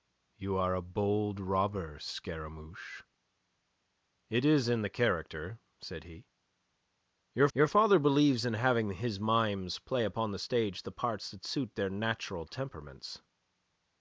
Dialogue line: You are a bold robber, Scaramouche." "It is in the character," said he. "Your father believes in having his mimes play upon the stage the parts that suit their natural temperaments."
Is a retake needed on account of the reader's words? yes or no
yes